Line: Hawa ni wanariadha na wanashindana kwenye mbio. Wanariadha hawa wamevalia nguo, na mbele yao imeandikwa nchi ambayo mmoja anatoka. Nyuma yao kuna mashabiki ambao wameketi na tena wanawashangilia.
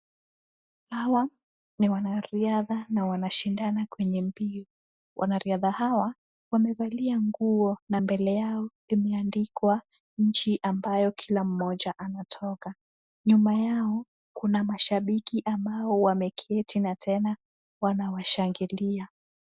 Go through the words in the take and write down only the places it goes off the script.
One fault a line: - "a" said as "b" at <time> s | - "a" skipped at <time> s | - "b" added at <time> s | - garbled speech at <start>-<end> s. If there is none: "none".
- "kila" added at 11.1 s